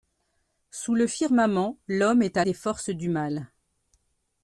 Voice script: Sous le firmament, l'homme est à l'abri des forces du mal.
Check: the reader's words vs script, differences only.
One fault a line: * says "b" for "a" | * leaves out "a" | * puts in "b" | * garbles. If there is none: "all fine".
* leaves out "l'abri"